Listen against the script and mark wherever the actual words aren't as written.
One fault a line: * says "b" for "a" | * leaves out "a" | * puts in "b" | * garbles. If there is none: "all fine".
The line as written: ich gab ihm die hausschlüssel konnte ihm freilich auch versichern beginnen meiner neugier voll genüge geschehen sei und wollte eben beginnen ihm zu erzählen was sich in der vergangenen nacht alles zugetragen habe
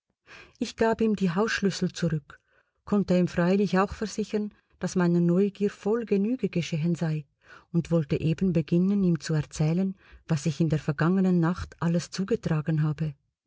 * puts in "zurück"
* says "daß" for "beginnen"